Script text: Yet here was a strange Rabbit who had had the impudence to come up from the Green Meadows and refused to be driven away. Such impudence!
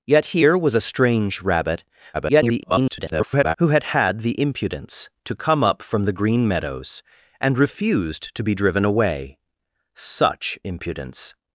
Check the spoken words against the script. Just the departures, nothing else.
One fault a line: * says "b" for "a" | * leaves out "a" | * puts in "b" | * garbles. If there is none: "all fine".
* garbles